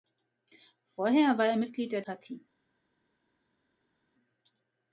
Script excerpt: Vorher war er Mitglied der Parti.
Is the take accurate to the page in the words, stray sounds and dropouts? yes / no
yes